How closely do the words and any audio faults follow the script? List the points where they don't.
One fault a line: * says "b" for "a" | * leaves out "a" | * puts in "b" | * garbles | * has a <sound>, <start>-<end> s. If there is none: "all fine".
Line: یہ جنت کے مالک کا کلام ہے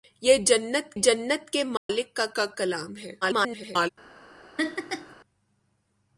* puts in "جنت"
* has a dropout, 1.8-1.9 s
* puts in "کا"
* garbles
* has a laugh, 4.6-5.2 s